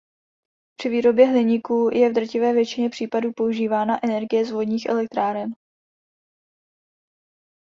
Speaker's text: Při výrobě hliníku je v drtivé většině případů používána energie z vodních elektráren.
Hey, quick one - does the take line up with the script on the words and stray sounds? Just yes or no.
yes